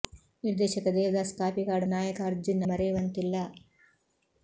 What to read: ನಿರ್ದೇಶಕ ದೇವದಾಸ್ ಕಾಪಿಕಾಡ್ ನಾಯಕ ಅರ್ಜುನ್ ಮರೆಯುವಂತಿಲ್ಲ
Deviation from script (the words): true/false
false